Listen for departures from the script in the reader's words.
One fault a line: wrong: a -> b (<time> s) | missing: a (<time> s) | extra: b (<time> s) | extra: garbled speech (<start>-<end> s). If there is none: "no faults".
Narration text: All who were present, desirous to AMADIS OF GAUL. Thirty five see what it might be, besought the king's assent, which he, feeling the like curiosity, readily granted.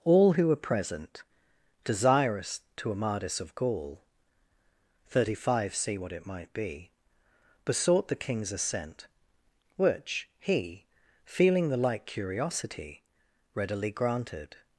no faults